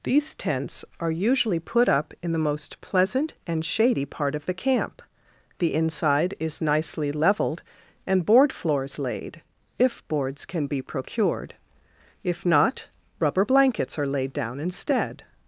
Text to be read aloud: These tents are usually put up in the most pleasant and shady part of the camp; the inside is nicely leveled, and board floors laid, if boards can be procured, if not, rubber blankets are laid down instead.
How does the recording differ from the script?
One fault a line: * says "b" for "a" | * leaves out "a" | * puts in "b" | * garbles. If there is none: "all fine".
all fine